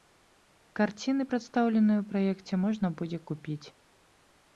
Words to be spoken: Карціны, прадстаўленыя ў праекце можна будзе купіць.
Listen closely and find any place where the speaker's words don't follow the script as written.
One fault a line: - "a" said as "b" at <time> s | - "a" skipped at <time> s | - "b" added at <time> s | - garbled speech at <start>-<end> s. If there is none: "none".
none